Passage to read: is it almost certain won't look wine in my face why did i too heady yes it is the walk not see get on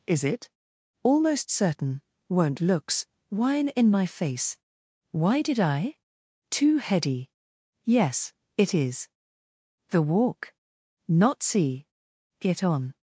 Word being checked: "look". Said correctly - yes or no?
no